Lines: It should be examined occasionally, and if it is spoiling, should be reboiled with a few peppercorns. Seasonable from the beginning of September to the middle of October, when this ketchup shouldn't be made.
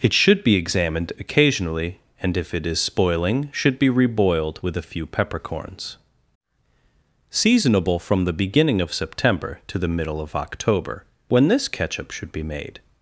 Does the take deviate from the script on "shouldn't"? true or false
true